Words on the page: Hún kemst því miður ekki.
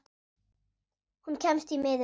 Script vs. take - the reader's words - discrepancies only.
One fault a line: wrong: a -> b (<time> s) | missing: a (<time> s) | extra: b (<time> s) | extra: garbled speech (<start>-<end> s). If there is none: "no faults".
no faults